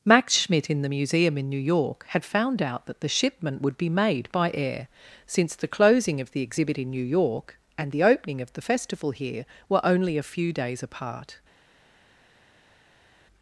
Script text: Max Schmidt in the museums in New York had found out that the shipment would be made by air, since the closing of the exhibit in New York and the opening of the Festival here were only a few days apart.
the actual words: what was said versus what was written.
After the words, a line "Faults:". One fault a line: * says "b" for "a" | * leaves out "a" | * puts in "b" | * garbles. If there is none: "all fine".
Max Schmidt in the museum in New York had found out that the shipment would be made by air, since the closing of the exhibit in New York and the opening of the Festival here were only a few days apart.
Faults:
* says "museum" for "museums"